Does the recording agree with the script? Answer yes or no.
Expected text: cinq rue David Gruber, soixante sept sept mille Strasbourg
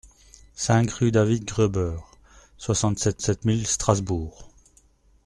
yes